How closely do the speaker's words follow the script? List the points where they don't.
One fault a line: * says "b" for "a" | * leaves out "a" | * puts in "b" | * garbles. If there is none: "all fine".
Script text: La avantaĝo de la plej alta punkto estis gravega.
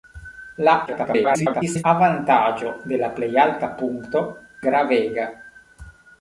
* garbles
* leaves out "estis"